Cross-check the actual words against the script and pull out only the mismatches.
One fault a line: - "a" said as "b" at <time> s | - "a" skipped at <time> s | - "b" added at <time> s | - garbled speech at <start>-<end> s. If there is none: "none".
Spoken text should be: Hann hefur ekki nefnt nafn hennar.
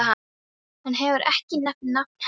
none